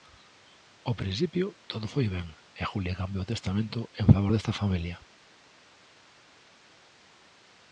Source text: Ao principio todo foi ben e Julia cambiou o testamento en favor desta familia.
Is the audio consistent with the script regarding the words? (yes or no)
yes